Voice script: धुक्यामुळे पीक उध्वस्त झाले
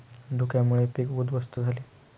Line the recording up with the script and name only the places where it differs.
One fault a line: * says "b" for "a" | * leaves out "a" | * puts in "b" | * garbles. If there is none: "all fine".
all fine